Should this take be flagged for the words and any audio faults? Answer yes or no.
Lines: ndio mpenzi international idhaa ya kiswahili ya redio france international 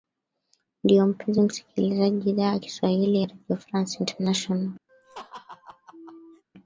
yes